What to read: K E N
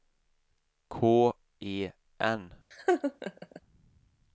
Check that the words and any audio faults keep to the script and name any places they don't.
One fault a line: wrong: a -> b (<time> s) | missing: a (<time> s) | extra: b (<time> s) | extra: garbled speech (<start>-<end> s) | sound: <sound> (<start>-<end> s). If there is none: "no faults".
sound: laugh (2.7-3.6 s)